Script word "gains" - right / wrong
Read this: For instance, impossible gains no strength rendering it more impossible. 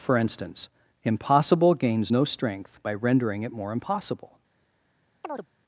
right